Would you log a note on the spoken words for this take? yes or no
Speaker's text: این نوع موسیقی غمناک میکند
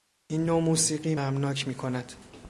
no